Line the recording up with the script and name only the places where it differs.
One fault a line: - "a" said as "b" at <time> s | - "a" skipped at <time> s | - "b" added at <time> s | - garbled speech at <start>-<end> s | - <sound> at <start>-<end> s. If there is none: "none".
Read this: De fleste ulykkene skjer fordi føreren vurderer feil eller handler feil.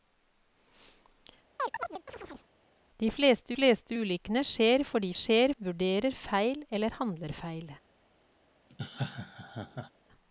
- chirp at 1.6-2.5 s
- "fleste" added at 3.5 s
- "føreren" said as "skjer" at 5.1 s
- laugh at 8.7-9.9 s